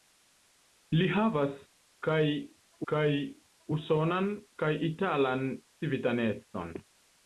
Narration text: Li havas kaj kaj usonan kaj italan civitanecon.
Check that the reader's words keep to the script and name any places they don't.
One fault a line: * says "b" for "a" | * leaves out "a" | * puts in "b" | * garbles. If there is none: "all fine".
all fine